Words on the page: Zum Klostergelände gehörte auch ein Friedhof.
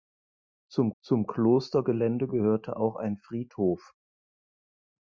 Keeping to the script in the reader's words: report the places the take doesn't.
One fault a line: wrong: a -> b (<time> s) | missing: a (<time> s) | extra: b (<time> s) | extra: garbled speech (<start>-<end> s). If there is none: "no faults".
extra: zum (1.0 s)